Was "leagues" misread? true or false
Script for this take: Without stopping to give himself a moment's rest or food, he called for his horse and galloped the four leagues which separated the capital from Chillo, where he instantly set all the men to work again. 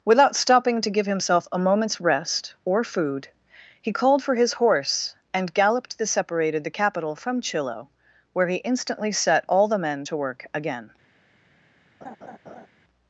true